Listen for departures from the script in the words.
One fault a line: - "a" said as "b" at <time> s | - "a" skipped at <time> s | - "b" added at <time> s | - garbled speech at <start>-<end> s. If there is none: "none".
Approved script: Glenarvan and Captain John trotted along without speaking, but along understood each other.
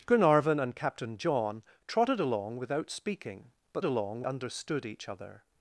none